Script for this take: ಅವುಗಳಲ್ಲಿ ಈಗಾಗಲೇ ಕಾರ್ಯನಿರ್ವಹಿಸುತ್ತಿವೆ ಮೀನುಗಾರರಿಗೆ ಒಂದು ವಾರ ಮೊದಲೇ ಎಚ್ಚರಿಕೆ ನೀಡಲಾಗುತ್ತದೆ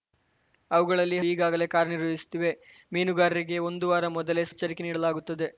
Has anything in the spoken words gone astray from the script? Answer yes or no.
no